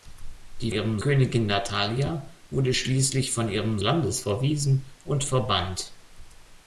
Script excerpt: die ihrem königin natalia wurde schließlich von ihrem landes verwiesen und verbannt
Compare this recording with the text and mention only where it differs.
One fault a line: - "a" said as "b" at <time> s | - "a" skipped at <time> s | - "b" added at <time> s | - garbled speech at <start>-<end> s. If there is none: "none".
none